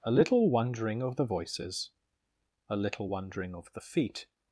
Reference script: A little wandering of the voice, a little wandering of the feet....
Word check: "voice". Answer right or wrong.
wrong